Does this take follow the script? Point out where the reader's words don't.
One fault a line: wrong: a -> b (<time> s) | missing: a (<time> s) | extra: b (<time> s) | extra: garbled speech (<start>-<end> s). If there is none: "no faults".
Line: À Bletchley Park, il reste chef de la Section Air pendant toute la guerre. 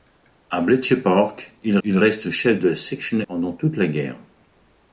extra: il (1.8 s)
missing: Air (3.2 s)